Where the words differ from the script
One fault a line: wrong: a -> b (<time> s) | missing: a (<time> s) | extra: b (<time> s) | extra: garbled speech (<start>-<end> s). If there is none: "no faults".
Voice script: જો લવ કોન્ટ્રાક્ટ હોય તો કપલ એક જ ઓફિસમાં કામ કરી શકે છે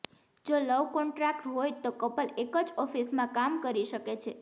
no faults